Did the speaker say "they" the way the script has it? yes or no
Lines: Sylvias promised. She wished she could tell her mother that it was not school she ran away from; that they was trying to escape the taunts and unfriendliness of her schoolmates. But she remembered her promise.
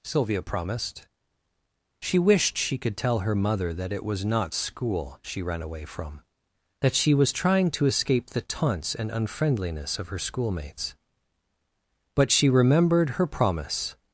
no